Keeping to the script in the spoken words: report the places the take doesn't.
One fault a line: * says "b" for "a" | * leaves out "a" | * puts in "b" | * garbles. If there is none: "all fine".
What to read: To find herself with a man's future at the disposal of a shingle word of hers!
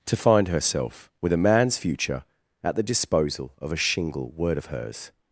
all fine